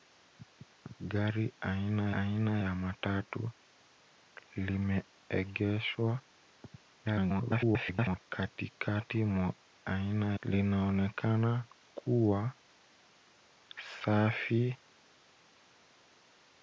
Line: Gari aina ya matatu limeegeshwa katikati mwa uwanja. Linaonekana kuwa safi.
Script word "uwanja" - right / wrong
wrong